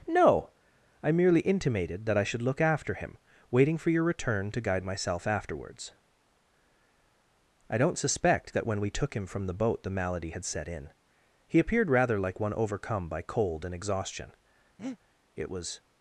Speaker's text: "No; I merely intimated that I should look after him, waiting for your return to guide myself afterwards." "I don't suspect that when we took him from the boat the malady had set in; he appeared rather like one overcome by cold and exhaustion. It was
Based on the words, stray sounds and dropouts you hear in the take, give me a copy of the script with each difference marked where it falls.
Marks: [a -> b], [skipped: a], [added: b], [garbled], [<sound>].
"No; I merely intimated that I should look after him, waiting for your return to guide myself afterwards." "I don't suspect that when we took him from the boat the malady had set in; he appeared rather like one overcome by cold and exhaustion. [breath] It was